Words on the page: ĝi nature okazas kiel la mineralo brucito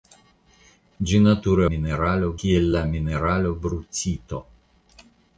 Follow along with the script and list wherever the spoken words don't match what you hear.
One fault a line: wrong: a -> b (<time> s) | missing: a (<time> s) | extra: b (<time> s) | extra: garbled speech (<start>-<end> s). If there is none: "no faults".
wrong: okazas -> mineralo (1.7 s)